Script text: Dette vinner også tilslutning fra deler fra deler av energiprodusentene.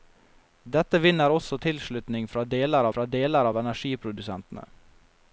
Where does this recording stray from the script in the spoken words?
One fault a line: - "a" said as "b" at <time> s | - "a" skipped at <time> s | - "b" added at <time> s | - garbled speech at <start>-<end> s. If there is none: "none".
none